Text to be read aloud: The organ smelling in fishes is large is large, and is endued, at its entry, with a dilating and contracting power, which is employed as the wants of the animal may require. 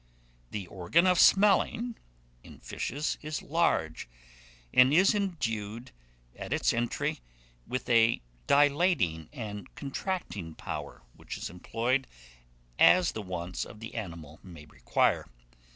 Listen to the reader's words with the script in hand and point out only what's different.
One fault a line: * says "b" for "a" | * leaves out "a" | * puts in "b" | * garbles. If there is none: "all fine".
* puts in "of"
* leaves out "is large"